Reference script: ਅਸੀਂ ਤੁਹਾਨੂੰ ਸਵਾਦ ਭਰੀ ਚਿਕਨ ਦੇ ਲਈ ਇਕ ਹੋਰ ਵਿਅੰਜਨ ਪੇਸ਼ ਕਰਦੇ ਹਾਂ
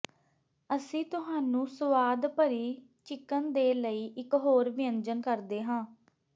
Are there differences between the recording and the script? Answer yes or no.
yes